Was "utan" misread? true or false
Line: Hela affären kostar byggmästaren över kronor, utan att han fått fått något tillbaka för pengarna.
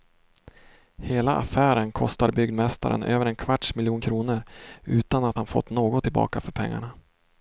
false